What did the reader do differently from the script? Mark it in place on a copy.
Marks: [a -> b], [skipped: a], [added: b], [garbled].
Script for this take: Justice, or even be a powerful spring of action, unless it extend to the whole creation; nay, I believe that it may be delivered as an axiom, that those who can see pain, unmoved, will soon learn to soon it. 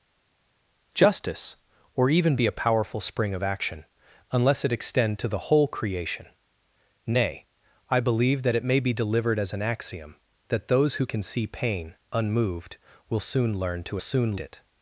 Justice, or even be a powerful spring of action, unless it extend to the whole creation; nay, I believe that it may be delivered as an axiom, that those who can see pain, unmoved, will soon learn to soon it.